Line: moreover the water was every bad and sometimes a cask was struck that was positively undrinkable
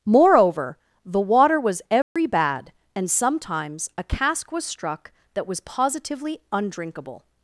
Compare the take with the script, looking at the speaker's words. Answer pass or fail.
pass